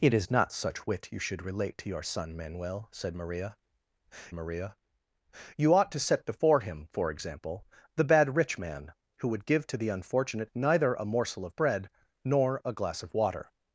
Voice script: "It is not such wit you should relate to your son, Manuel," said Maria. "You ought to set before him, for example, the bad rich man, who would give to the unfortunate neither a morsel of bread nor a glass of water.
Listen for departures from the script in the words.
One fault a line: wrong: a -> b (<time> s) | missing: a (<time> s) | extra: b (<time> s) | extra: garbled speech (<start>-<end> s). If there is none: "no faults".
extra: Maria (4.3 s)